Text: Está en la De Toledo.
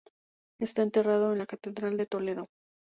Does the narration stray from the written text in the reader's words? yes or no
yes